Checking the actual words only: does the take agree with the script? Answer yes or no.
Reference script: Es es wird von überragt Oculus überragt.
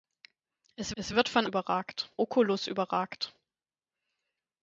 yes